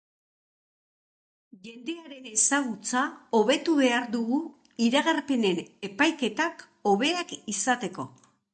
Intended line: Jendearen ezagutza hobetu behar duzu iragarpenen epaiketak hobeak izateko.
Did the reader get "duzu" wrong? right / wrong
wrong